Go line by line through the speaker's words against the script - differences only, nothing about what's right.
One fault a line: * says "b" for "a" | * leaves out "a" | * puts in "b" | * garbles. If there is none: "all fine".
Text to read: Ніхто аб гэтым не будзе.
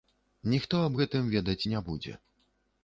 * puts in "ведаць"